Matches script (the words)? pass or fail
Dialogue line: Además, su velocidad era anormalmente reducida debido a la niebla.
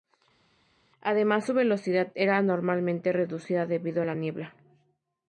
pass